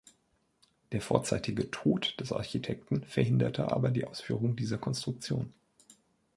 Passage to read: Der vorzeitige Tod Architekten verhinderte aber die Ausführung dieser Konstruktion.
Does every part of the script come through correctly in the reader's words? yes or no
no